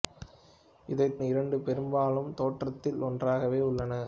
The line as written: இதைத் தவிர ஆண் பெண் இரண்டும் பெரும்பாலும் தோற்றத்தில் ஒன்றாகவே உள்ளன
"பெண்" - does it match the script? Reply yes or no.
no